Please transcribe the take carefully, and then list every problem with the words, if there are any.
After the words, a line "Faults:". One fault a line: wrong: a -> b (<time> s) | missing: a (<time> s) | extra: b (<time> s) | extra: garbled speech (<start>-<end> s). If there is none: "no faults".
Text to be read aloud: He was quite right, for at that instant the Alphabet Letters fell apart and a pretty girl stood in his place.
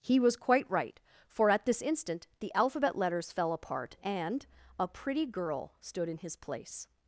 He was quite right, for at this instant the Alphabet Letters fell apart and a pretty girl stood in his place.
Faults:
wrong: that -> this (1.6 s)